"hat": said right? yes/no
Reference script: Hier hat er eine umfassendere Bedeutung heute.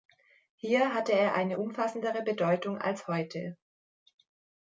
no